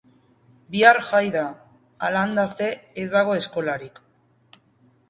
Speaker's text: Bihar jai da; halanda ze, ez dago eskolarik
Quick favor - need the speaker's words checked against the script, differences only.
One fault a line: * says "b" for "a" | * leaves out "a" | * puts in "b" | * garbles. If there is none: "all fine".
all fine